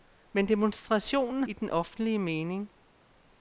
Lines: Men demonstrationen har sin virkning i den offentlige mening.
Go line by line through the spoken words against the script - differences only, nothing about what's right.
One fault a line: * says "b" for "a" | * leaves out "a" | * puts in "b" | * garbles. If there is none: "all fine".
* leaves out "har sin virkning"